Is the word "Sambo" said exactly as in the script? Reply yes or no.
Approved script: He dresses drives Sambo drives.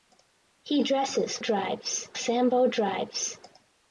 yes